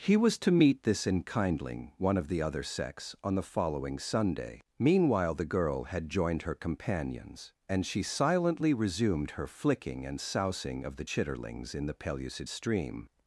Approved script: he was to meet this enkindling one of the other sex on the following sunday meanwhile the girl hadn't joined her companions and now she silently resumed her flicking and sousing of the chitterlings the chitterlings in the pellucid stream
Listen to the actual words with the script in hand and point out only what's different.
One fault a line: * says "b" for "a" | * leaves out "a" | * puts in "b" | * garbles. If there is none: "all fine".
* says "had" for "hadn't"
* leaves out "now"
* leaves out "the chitterlings"